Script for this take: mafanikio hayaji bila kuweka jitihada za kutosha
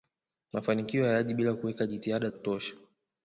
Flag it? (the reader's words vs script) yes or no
yes